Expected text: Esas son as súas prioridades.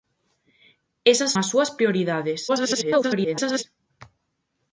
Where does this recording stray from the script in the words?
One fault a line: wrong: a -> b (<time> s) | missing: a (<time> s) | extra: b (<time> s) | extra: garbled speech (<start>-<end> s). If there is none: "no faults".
missing: son (1.3 s)
extra: garbled speech (2.5-3.6 s)